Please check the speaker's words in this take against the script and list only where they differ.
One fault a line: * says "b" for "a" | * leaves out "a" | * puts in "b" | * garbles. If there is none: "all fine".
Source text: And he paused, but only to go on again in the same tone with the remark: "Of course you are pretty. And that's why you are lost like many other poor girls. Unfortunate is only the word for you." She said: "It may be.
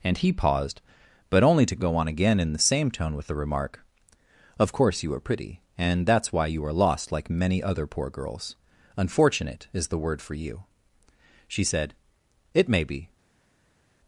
* leaves out "only"